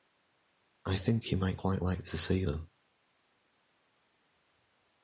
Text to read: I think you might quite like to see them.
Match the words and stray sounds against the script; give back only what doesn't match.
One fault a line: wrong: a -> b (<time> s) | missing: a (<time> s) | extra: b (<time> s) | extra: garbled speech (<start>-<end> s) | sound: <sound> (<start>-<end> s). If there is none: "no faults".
no faults